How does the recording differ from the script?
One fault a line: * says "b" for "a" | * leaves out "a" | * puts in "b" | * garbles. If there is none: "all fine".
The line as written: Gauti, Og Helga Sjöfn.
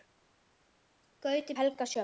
all fine